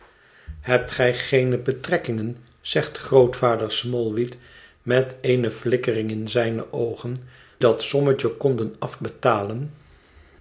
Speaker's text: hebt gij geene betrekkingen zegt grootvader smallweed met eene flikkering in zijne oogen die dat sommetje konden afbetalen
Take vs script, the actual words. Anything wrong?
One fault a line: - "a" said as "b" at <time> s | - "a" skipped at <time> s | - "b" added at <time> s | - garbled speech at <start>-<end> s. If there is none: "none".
- "die" skipped at 7.2 s